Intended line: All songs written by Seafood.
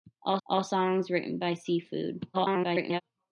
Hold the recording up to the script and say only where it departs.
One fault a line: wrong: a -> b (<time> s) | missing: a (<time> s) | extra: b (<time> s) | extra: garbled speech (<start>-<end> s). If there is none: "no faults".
extra: all (0.5 s)
extra: garbled speech (2.3-3.0 s)